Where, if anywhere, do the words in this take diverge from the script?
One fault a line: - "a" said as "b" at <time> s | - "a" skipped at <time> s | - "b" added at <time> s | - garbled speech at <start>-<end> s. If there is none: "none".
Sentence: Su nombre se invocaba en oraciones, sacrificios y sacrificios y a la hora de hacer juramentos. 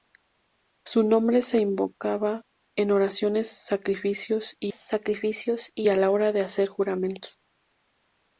none